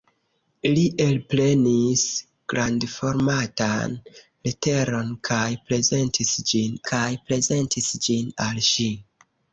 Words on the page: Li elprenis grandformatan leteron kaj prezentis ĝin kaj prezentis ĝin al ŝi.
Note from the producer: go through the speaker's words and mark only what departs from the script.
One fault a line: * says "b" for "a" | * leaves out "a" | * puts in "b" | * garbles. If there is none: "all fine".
all fine